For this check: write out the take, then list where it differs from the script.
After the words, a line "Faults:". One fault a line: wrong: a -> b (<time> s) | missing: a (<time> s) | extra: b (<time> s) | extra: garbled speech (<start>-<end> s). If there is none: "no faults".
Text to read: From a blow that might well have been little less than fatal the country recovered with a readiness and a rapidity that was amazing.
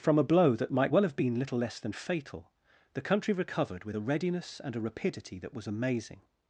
From a blow that might well have been little less than fatal the country recovered with a readiness and a rapidity that was amazing.
Faults:
no faults